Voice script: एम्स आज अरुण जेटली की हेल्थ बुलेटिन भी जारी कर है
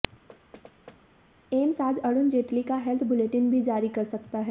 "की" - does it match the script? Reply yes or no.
no